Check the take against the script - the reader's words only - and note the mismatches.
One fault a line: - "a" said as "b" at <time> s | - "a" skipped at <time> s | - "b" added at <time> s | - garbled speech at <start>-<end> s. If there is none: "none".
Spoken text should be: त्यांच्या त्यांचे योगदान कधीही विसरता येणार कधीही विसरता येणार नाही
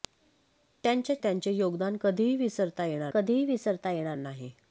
none